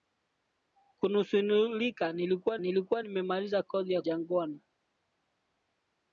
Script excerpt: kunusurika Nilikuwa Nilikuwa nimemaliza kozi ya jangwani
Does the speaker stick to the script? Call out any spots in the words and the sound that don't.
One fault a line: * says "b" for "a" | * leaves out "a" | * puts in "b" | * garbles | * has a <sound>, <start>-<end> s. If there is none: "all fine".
all fine